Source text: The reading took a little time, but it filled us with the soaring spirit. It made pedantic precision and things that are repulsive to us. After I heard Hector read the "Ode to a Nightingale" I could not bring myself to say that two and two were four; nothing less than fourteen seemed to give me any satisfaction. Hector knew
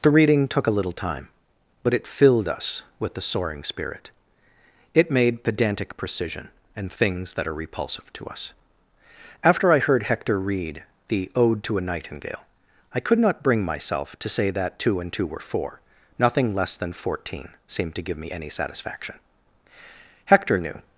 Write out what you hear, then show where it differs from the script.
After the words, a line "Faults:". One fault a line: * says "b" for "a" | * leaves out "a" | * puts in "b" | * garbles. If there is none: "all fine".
The reading took a little time, but it filled us with the soaring spirit. It made pedantic precision and things that are repulsive to us. After I heard Hector read the "Ode to a Nightingale" I could not bring myself to say that two and two were four; nothing less than fourteen seemed to give me any satisfaction. Hector knew
Faults:
all fine